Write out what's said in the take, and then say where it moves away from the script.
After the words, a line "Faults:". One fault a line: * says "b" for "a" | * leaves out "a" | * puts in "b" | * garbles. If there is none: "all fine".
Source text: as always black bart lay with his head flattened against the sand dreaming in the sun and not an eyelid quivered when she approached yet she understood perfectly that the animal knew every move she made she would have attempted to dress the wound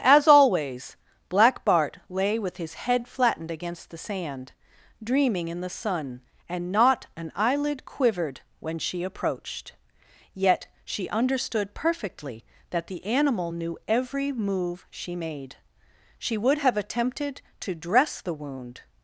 as always black bart lay with his head flattened against the sand dreaming in the sun and not an eyelid quivered when she approached yet she understood perfectly that the animal knew every move she made she would have attempted to dress the wound
Faults:
all fine